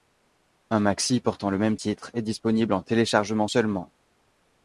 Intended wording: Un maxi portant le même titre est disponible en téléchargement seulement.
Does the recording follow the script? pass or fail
pass